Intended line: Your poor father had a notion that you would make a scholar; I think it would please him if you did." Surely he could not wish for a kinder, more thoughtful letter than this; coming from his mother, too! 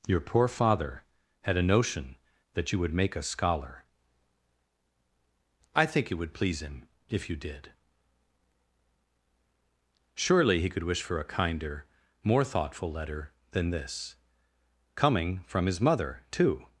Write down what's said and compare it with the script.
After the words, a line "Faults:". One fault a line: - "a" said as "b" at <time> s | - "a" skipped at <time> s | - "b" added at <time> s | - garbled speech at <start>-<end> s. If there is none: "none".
Your poor father had a notion that you would make a scholar; I think it would please him if you did." Surely he could wish for a kinder, more thoughtful letter than this; coming from his mother, too!
Faults:
- "not" skipped at 10.8 s